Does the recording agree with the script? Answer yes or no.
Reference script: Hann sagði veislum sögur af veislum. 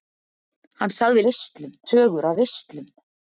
yes